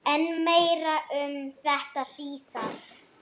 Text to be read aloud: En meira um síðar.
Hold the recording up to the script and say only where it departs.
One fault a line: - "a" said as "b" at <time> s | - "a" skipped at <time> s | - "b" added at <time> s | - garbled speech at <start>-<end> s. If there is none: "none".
- "þetta" added at 1.6 s